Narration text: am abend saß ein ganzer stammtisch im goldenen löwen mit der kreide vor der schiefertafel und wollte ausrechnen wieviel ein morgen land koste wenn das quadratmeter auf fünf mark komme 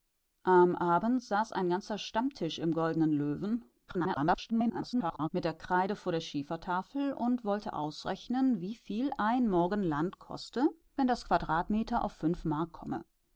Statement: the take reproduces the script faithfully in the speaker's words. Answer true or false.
false